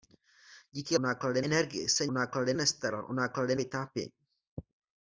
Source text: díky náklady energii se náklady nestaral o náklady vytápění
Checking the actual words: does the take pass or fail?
pass